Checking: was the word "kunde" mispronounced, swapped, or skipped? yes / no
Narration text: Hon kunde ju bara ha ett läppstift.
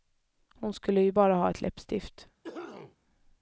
yes